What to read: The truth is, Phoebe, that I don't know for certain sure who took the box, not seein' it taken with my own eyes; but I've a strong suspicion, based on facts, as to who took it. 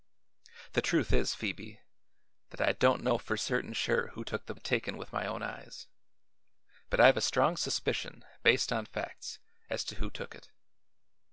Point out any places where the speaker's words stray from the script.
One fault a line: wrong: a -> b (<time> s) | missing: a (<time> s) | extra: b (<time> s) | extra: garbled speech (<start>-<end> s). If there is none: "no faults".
missing: box not seein (4.5 s)